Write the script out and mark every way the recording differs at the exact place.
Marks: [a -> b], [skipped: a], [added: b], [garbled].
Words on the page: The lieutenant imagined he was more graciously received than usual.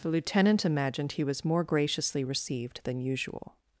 The lieutenant imagined he was more graciously received than usual.